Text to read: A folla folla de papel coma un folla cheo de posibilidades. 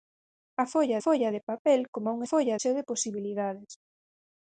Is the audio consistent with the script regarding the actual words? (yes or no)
yes